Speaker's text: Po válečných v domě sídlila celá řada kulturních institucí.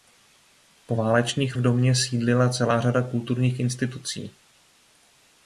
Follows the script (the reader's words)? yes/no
yes